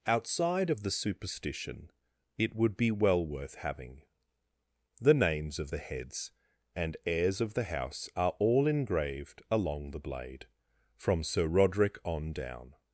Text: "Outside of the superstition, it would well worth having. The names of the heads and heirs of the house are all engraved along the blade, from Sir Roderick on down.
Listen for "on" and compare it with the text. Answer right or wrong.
right